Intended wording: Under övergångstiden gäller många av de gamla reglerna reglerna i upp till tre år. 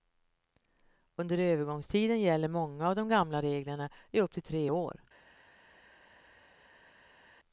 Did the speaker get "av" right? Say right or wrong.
right